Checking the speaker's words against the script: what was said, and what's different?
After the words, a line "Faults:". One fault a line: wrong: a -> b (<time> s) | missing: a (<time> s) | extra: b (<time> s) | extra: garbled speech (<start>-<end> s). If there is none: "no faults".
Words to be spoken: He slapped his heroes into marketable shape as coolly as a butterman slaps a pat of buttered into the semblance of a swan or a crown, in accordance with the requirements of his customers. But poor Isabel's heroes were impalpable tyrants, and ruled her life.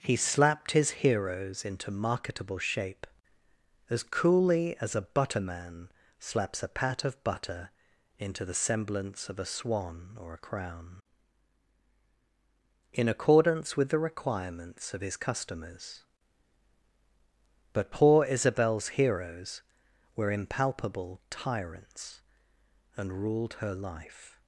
He slapped his heroes into marketable shape as coolly as a butterman slaps a pat of butter into the semblance of a swan or a crown, in accordance with the requirements of his customers. But poor Isabel's heroes were impalpable tyrants, and ruled her life.
Faults:
wrong: buttered -> butter (7.2 s)